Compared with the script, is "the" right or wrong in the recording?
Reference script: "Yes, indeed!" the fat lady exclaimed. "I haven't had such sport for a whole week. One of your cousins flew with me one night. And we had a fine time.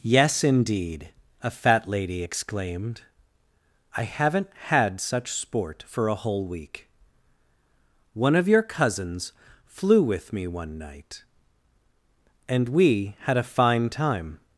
wrong